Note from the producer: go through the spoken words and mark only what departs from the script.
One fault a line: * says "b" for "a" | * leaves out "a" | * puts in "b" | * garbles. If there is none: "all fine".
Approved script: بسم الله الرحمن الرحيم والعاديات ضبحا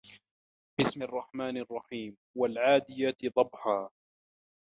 * leaves out "الله"